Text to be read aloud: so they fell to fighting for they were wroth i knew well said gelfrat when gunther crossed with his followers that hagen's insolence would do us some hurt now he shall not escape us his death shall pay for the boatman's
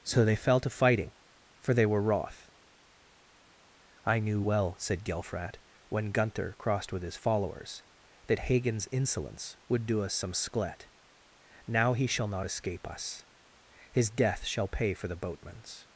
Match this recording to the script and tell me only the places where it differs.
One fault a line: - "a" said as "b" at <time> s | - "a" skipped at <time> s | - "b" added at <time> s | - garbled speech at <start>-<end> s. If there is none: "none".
- "hurt" said as "sklet" at 10.3 s